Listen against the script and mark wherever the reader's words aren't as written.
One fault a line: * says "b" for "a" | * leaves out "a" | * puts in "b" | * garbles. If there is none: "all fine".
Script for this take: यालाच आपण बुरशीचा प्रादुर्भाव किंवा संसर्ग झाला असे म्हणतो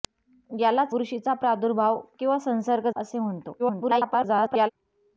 * leaves out "आपण"
* leaves out "झाला"
* garbles